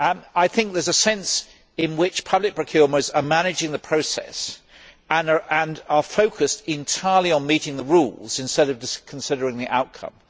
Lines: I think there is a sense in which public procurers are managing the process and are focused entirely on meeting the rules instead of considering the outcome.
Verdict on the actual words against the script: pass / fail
pass